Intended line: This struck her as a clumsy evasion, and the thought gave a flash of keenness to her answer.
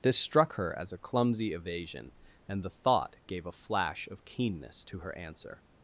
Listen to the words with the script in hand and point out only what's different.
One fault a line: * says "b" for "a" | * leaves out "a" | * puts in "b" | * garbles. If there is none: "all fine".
all fine